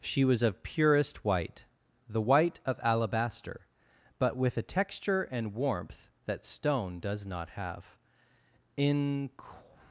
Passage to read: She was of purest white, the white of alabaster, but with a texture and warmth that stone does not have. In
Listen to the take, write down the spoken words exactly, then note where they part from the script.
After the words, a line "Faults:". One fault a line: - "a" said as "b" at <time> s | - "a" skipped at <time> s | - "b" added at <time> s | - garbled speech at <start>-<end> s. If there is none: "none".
She was of purest white, the white of alabaster, but with a texture and warmth that stone does not have. In
Faults:
none